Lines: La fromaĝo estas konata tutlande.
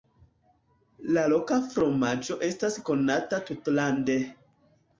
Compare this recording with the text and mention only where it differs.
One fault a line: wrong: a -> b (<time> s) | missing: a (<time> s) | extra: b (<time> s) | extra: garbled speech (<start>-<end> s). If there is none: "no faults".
extra: loka (1.3 s)